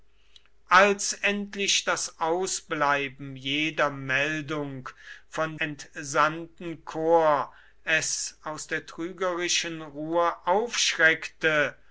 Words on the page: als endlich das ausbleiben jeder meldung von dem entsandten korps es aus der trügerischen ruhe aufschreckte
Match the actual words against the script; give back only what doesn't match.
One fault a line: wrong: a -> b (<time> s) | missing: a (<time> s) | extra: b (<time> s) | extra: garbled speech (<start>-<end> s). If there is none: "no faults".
missing: dem (5.6 s)